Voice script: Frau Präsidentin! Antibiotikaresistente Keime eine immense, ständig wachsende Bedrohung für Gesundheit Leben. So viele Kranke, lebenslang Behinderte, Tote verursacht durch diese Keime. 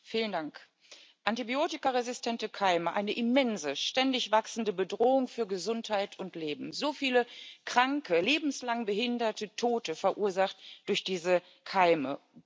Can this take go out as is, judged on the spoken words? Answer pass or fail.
fail